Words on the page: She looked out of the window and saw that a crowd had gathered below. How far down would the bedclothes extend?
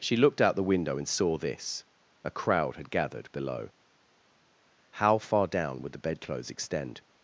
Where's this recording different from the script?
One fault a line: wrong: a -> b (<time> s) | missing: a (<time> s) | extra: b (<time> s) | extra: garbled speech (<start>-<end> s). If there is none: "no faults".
missing: of (0.6 s)
wrong: that -> this (1.4 s)